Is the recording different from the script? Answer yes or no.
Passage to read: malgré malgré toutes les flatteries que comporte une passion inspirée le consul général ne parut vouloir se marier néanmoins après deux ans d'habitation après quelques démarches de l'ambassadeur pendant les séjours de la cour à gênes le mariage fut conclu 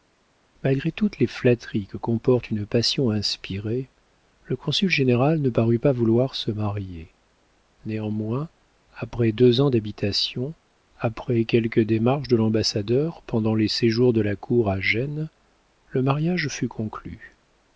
yes